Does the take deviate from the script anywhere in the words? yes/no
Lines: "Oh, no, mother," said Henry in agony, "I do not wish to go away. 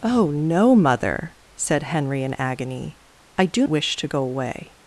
yes